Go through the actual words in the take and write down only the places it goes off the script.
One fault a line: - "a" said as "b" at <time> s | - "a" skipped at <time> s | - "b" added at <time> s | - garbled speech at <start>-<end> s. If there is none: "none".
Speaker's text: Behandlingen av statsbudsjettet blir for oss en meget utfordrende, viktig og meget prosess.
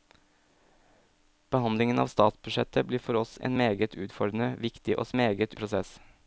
none